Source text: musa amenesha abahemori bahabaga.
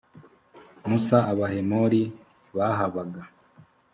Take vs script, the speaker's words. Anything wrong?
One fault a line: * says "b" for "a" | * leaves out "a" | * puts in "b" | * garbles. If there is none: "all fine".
* leaves out "amenesha"